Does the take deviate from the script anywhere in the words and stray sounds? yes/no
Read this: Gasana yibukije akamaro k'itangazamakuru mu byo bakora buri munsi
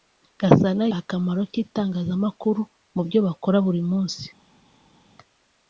yes